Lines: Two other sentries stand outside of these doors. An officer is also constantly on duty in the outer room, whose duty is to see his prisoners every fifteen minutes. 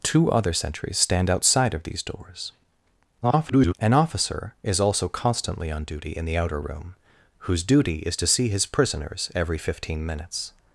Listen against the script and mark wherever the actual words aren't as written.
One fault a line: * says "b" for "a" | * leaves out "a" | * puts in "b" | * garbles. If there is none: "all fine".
* garbles